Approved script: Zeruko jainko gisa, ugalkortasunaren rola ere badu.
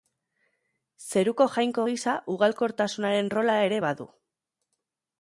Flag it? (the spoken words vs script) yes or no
no